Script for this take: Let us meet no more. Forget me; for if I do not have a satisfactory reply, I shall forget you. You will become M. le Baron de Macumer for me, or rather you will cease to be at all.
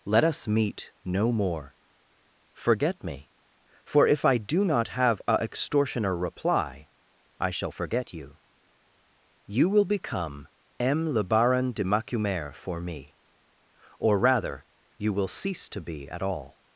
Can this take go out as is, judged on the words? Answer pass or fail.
fail